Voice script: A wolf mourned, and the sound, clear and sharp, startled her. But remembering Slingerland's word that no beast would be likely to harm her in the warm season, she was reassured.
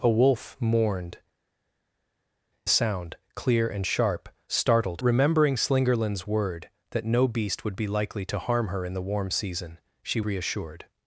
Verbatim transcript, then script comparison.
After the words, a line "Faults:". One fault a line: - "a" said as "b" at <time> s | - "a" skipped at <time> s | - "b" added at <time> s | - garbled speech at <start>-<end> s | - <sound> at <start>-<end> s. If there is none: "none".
A wolf mourned, the sound, clear and sharp, startled remembering Slingerland's word that no beast would be likely to harm her in the warm season, she reassured.
Faults:
- "and" skipped at 1.2 s
- "her But" skipped at 5.0 s
- "was" skipped at 10.2 s